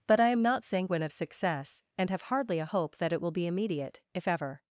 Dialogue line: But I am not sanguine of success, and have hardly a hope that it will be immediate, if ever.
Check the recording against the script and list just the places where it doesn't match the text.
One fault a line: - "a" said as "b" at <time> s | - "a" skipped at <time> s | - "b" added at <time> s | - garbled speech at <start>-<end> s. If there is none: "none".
none